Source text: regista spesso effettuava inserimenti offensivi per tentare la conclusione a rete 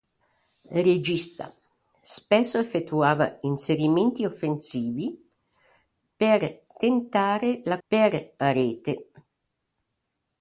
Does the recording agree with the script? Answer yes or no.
no